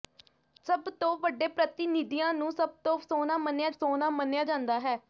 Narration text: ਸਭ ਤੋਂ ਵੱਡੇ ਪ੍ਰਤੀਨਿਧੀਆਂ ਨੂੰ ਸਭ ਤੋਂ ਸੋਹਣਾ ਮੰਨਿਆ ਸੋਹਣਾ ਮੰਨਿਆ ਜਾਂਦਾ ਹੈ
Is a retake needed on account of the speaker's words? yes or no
no